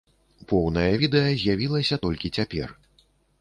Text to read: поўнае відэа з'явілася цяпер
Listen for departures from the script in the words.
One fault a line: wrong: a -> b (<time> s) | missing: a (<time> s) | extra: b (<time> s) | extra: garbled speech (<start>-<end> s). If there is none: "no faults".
extra: толькі (2.1 s)